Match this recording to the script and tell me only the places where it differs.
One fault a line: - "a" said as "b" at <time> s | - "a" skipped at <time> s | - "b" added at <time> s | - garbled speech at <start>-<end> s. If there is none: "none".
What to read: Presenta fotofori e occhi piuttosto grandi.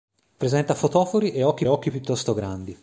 - "occhi" added at 1.7 s